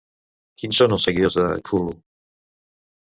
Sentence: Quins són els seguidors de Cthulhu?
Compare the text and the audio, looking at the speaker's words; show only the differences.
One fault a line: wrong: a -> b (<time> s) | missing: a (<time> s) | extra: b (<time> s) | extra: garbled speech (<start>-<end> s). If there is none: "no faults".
no faults